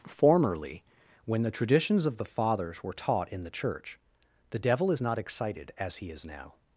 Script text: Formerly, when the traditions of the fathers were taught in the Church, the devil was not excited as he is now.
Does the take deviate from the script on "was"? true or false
true